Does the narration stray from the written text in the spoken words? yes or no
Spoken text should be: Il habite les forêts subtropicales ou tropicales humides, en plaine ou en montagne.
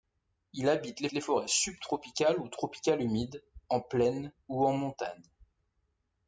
yes